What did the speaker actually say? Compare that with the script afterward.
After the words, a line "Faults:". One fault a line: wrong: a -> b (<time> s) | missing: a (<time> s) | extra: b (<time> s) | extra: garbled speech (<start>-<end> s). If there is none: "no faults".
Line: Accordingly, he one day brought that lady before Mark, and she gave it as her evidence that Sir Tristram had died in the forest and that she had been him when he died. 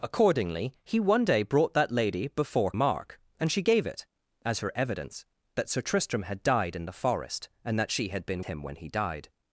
Accordingly, he one day brought that lady before Mark, and she gave it as her evidence that Sir Tristram had died in the forest and that she had been him when he died.
Faults:
no faults